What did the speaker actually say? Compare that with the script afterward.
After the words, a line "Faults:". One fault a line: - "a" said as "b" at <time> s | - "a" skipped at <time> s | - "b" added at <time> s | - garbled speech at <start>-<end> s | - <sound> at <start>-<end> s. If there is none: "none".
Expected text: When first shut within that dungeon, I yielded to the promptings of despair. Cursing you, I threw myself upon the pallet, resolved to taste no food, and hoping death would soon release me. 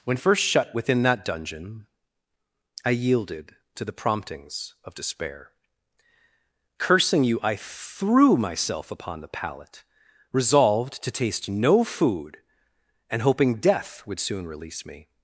When first shut within that dungeon, I yielded to the promptings of despair. Cursing you, I threw myself upon the pallet, resolved to taste no food, and hoping death would soon release me.
Faults:
none